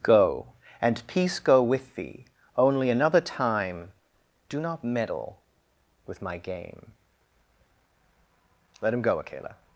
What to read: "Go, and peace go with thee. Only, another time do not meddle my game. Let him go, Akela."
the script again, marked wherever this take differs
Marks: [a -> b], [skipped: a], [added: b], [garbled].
"Go, and peace go with thee. Only, another time do not meddle [added: with] my game. Let him go, Akela."